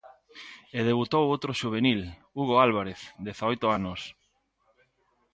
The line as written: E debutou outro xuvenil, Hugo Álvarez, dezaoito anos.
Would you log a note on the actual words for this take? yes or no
no